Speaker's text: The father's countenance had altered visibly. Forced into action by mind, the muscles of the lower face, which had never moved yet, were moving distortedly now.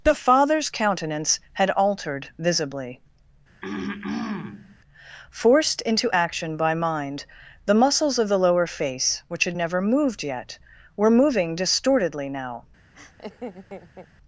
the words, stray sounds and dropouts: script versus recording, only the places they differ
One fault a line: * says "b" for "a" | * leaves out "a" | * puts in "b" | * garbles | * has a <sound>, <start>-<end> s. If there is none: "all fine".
* has a throat clearing, 3.6-4.8 s
* has a laugh, 12.9-14.1 s